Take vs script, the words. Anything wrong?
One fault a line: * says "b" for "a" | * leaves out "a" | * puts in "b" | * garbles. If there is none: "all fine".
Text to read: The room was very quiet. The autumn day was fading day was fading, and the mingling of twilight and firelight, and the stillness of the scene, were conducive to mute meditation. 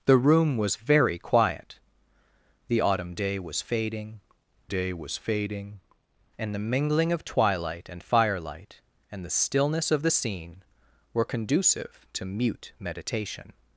all fine